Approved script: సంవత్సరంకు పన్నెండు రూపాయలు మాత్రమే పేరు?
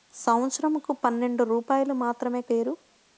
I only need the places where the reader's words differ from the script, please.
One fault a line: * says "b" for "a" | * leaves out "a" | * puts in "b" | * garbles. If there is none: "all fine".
all fine